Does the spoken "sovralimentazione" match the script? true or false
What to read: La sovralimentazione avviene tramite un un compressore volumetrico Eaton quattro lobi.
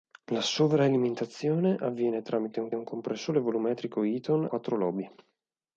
true